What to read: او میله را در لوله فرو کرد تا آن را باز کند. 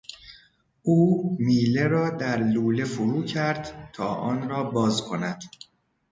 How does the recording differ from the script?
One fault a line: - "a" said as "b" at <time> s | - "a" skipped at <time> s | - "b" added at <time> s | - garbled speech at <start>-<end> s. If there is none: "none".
none